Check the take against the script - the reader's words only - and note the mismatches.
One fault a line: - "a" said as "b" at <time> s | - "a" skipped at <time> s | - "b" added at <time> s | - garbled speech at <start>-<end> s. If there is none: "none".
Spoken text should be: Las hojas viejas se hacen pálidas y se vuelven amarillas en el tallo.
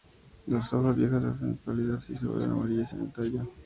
none